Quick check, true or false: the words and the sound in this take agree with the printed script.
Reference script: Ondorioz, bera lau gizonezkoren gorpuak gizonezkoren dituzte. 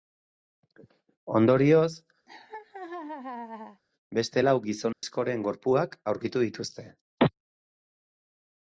false